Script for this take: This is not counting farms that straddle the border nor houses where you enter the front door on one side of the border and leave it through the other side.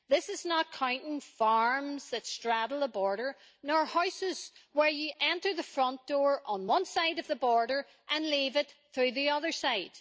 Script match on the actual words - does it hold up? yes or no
yes